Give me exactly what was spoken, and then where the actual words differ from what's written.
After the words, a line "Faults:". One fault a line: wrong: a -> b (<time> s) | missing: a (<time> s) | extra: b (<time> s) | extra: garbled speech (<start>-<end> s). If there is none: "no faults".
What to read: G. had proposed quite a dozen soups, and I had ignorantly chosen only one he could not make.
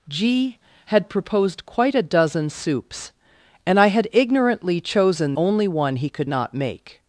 G. had proposed quite a dozen soups, and I had ignorantly chosen only one he could not make.
Faults:
no faults